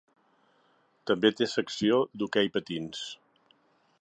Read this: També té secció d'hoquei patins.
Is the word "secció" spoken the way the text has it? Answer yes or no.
yes